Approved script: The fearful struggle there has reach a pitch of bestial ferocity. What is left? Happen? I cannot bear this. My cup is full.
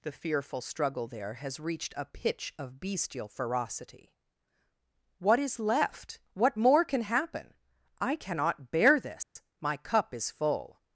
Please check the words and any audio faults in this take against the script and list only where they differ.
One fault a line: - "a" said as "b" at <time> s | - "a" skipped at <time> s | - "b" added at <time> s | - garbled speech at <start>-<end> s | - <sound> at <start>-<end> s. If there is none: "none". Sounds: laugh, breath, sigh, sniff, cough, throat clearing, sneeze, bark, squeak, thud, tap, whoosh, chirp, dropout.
- "reach" said as "reached" at 1.6 s
- "What more can" added at 6.3 s
- dropout at 9.2-9.4 s